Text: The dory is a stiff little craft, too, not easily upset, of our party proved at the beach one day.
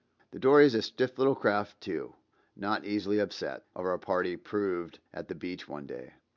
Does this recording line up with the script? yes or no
yes